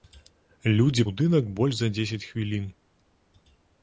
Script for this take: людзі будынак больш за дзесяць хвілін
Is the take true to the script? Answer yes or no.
yes